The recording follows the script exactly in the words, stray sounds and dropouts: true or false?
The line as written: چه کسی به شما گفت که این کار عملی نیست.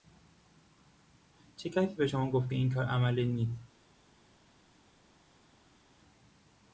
true